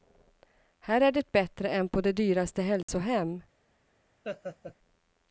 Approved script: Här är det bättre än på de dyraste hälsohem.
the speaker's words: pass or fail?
pass